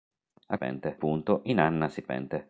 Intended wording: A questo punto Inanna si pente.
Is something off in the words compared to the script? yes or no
yes